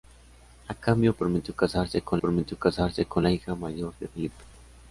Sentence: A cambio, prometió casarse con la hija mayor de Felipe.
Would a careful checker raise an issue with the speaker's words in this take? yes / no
yes